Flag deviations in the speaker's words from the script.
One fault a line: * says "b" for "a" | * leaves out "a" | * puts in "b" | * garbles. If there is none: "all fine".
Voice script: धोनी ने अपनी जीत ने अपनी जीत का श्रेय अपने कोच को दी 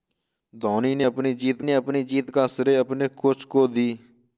all fine